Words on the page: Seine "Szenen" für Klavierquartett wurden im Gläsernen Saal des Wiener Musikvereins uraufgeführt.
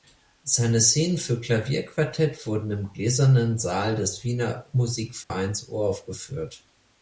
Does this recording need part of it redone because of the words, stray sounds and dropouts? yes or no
yes